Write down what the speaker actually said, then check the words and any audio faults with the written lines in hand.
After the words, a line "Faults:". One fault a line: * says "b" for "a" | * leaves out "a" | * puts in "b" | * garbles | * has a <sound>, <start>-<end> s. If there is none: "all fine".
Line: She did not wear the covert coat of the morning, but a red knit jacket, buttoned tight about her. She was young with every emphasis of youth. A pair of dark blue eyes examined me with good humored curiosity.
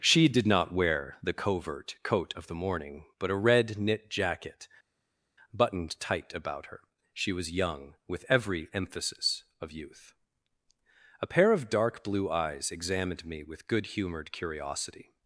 She did not wear the covert coat of the morning, but a red knit jacket, buttoned tight about her. She was young with every emphasis of youth. A pair of dark blue eyes examined me with good humored curiosity.
Faults:
all fine